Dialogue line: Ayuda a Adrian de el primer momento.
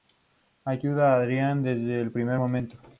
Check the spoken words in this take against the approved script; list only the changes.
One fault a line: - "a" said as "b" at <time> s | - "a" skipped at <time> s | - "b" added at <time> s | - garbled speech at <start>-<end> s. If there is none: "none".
- "de" said as "desde" at 1.6 s